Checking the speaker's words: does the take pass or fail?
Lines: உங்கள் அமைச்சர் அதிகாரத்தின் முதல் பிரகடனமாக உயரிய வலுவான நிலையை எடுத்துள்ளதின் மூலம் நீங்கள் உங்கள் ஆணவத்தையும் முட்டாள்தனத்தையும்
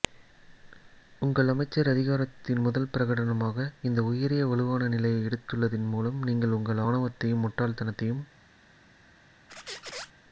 fail